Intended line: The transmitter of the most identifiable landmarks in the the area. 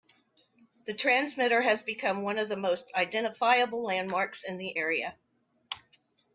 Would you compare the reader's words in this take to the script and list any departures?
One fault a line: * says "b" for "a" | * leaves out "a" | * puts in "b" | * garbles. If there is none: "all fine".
* puts in "has become one"
* leaves out "the"